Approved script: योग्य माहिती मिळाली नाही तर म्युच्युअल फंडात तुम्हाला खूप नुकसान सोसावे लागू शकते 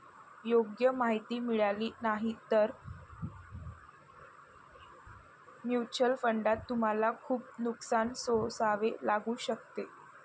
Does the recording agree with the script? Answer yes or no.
yes